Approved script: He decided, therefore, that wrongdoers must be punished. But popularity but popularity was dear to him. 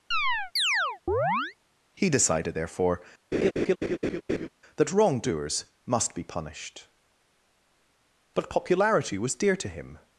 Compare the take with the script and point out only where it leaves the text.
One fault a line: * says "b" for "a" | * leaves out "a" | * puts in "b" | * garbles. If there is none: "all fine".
* leaves out "but popularity"